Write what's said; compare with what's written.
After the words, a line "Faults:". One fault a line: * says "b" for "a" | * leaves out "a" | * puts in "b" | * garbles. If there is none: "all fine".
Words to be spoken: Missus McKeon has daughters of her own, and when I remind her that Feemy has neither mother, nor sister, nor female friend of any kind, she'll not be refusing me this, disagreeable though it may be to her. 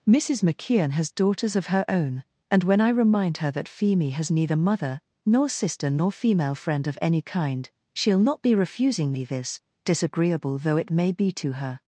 Missus McKeon has daughters of her own, and when I remind her that Feemy has neither mother, nor sister, nor female friend of any kind, she'll not be refusing me this, disagreeable though it may be to her.
Faults:
all fine